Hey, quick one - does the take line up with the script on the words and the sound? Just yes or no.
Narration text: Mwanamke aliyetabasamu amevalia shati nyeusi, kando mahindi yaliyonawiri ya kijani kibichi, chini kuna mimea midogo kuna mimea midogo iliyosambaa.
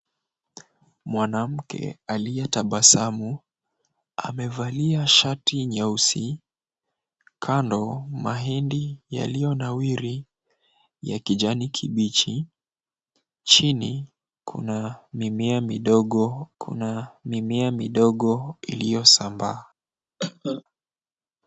no